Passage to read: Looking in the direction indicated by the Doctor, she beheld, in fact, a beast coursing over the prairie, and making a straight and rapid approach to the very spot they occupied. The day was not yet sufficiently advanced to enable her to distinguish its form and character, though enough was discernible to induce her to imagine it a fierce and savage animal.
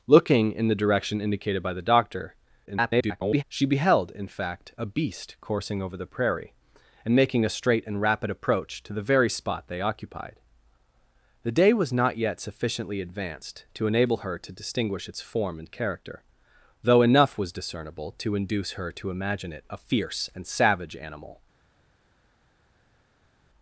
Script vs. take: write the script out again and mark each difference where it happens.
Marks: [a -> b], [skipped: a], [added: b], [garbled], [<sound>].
Looking in the direction indicated by the Doctor, [garbled] she beheld, in fact, a beast coursing over the prairie, and making a straight and rapid approach to the very spot they occupied. The day was not yet sufficiently advanced to enable her to distinguish its form and character, though enough was discernible to induce her to imagine it a fierce and savage animal.